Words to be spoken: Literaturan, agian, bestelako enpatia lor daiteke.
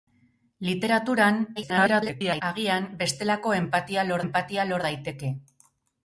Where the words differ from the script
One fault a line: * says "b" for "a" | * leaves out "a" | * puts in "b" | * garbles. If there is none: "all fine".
* garbles
* puts in "enpatia lor"